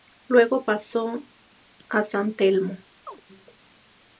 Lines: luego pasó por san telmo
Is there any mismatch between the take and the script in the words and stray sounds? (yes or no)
yes